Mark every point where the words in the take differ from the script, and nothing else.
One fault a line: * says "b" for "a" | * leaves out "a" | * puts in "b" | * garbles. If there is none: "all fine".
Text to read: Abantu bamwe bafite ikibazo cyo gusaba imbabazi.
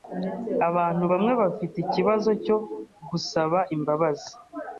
all fine